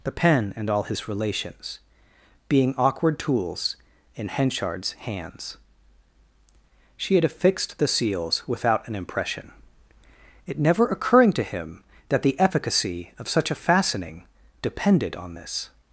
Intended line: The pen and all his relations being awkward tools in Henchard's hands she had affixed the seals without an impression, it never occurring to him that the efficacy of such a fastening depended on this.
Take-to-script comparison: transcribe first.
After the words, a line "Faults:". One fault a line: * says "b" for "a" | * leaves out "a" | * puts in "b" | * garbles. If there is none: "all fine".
The pen and all his relations being awkward tools in Henchard's hands she had affixed the seals without an impression, it never occurring to him that the efficacy of such a fastening depended on this.
Faults:
all fine